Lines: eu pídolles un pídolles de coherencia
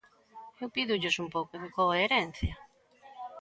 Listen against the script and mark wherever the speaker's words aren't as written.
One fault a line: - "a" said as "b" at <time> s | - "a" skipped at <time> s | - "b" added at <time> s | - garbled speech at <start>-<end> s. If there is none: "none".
- "pídolles" said as "pouco" at 1.4 s